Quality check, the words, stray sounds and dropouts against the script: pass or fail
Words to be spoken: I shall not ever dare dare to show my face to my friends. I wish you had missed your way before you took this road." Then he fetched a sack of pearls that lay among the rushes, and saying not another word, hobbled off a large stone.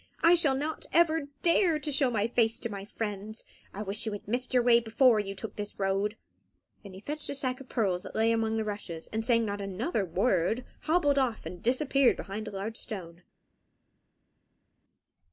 fail